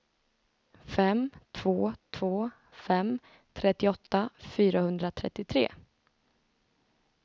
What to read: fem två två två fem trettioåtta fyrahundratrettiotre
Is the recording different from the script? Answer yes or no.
yes